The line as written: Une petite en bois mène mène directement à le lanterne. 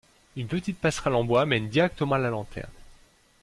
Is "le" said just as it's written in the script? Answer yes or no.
no